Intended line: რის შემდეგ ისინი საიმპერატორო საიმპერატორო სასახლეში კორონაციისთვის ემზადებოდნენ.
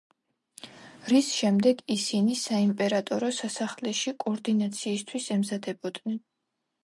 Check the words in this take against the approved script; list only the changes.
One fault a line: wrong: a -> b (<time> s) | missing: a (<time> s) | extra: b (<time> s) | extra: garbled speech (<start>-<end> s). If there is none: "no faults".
missing: საიმპერატორო (3.3 s)